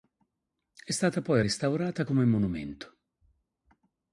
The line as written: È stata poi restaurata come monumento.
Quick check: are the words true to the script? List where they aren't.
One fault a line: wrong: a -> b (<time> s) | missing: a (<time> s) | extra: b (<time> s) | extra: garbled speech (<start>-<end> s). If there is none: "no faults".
no faults